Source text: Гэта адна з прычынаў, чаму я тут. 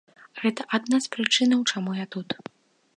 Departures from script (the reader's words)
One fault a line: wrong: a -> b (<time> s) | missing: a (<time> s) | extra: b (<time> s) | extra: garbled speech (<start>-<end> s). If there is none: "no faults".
no faults